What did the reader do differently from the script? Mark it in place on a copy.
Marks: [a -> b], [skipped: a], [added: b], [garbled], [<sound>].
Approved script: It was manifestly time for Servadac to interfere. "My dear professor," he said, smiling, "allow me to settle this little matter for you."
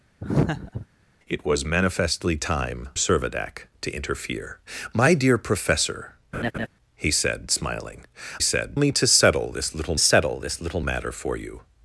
[laugh] It was manifestly time [skipped: for] Servadac to interfere. "My dear professor," [laugh] he said, smiling, ["allow -> said] me to settle this little [added: settle this little] matter for you."